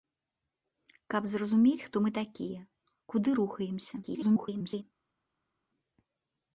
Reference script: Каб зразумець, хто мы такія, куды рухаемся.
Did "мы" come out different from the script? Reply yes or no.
no